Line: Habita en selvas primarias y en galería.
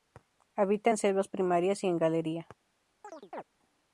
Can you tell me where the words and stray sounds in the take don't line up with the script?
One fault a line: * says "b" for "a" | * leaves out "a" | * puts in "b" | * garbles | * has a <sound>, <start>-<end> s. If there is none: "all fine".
* has a chirp, 3.0-3.4 s